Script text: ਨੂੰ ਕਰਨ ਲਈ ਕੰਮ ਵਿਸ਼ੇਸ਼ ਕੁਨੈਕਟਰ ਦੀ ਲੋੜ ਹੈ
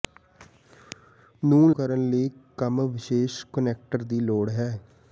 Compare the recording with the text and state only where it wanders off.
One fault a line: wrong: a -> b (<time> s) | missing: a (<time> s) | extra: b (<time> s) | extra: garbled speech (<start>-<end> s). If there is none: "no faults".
no faults